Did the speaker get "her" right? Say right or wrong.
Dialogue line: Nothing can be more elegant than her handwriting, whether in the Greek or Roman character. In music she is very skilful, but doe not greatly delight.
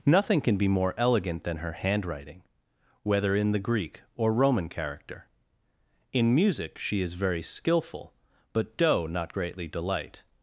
right